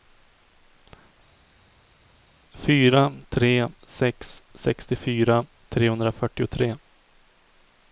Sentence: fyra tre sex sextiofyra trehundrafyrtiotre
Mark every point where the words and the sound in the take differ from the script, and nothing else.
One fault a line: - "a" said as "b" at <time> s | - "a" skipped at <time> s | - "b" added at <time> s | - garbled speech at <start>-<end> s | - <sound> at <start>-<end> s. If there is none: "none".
none